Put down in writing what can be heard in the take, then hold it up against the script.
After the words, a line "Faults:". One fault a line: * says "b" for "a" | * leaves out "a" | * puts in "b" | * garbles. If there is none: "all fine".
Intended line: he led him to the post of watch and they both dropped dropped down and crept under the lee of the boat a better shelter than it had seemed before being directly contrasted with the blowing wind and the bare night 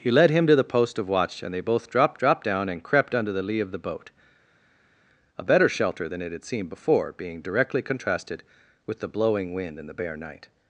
he led him to the post of watch and they both dropped dropped down and crept under the lee of the boat a better shelter than it had seemed before being directly contrasted with the blowing wind and the bare night
Faults:
all fine